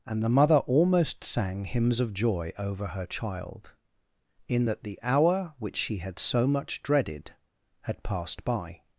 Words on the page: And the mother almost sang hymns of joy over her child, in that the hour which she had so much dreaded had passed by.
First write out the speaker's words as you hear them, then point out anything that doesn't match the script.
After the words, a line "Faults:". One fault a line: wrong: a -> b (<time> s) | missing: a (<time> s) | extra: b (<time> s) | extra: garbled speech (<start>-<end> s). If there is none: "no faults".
And the mother almost sang hymns of joy over her child, in that the hour which she had so much dreaded had passed by.
Faults:
no faults